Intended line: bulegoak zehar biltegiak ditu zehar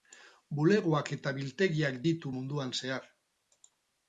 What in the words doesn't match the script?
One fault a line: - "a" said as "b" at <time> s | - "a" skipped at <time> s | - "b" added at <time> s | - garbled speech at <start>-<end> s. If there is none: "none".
- "zehar" said as "eta" at 1.2 s
- "munduan" added at 2.4 s